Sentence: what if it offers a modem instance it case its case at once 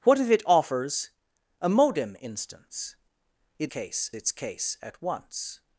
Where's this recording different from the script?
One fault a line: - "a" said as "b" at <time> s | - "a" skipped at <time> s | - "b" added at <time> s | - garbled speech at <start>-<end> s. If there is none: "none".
none